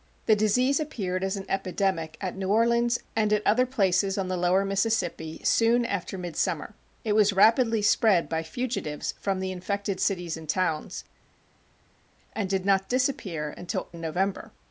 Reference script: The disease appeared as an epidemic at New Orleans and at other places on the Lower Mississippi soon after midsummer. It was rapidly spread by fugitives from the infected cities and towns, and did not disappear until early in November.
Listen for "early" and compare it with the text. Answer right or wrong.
wrong